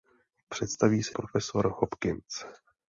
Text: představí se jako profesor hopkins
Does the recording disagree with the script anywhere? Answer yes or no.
yes